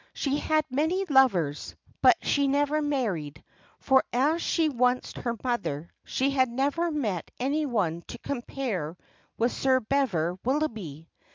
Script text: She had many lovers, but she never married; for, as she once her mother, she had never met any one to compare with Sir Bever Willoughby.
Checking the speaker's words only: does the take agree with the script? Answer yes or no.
yes